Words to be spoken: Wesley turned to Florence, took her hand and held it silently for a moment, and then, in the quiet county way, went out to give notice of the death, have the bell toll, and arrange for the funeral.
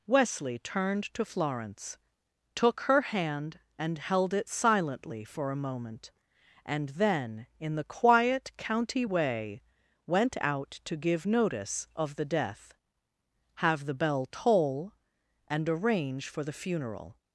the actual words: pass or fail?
pass